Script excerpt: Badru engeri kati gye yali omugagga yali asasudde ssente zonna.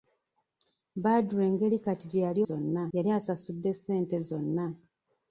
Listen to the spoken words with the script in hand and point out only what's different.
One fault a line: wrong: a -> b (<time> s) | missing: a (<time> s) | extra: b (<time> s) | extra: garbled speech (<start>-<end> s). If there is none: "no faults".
wrong: omugagga -> zonna (2.5 s)